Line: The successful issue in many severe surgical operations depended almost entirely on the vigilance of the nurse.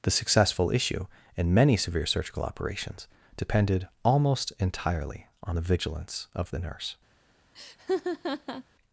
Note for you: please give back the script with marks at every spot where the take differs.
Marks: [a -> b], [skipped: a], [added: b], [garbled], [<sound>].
The successful issue in many severe surgical operations depended almost entirely on the vigilance of the nurse. [laugh]